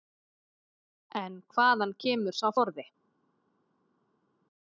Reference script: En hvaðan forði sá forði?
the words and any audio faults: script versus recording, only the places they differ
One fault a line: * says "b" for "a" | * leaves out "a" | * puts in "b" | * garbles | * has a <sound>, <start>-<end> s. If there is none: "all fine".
* says "kemur" for "forði"